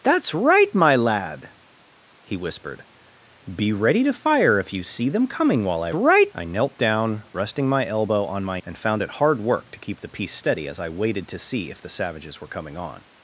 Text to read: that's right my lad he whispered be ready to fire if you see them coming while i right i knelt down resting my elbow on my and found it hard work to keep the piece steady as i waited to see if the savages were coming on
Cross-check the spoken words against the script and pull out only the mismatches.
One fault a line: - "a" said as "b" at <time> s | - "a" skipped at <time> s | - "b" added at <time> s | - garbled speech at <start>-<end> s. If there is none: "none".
none